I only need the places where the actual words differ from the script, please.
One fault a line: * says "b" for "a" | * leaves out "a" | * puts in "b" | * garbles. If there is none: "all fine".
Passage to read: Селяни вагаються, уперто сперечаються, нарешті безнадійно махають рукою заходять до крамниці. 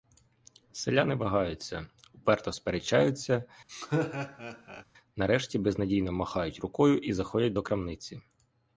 * puts in "і"